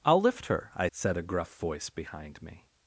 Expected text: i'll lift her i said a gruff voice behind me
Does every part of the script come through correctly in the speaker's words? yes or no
yes